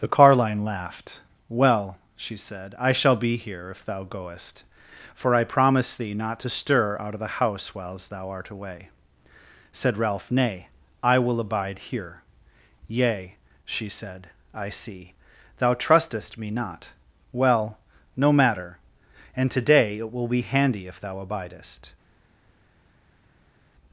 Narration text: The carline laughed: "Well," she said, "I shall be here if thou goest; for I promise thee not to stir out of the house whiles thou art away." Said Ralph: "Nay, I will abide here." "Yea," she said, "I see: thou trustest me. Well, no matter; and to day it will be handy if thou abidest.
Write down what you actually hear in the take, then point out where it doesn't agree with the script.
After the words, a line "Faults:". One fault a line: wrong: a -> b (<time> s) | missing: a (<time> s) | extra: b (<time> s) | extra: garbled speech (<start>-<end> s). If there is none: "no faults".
The carline laughed: "Well," she said, "I shall be here if thou goest; for I promise thee not to stir out of the house whiles thou art away." Said Ralph: "Nay, I will abide here." "Yea," she said, "I see: thou trustest me not. Well, no matter; and to day it will be handy if thou abidest.
Faults:
extra: not (16.5 s)